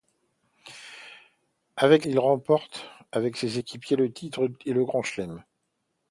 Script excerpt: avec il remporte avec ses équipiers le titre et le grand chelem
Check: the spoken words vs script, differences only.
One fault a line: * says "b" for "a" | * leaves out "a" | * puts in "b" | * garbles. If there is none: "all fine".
all fine